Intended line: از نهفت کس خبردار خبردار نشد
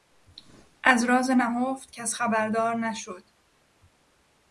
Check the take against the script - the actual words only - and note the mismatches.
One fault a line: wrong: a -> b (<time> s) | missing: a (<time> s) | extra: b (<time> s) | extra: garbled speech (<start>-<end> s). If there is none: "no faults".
extra: راز (1.0 s)
missing: خبردار (2.7 s)